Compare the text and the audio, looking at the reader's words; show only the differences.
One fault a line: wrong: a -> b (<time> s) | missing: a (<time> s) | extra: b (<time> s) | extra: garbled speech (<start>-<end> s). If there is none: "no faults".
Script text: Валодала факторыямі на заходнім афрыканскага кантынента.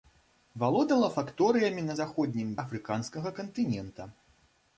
no faults